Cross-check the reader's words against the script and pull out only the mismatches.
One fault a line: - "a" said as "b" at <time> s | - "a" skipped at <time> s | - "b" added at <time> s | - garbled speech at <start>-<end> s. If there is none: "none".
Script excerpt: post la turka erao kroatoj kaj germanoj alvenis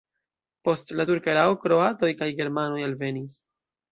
none